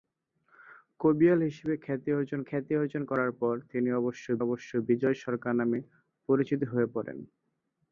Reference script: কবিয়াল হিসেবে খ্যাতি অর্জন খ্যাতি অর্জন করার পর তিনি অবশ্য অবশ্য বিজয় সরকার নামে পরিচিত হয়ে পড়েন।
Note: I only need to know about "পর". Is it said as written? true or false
true